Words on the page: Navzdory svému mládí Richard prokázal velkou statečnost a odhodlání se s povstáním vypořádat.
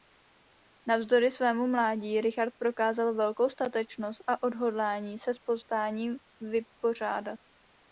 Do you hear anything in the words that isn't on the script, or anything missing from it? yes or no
no